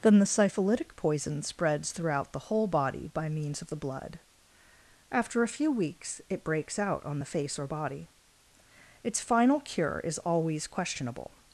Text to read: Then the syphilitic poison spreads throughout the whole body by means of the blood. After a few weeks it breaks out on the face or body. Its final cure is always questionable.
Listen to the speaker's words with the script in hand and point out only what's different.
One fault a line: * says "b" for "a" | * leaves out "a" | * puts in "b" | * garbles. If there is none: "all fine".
all fine